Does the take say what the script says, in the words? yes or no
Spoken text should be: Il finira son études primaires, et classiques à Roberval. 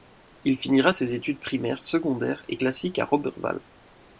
no